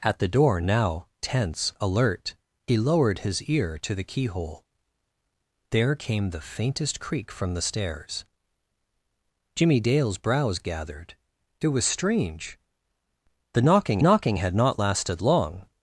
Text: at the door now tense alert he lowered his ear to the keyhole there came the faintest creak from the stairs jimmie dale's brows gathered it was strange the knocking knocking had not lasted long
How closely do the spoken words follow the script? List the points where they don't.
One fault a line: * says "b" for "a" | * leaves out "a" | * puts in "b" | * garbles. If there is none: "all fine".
all fine